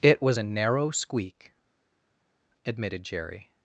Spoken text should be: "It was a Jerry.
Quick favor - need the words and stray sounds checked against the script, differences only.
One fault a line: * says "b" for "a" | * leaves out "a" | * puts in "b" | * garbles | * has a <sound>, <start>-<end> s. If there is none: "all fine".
* puts in "narrow squeak admitted"